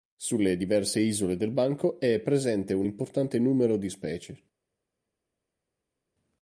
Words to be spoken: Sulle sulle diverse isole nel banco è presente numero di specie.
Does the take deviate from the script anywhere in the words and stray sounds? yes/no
yes